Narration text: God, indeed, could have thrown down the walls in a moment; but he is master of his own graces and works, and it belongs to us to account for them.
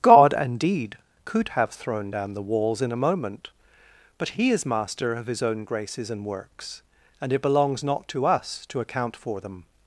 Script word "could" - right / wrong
right